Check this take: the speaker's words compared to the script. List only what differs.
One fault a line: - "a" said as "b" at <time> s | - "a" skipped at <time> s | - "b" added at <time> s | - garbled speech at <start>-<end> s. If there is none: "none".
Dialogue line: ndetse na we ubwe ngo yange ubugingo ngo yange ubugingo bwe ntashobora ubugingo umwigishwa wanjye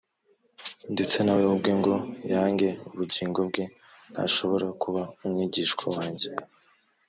- "ngo yange ubugingo" skipped at 3.4 s
- "ubugingo" said as "kuba" at 4.8 s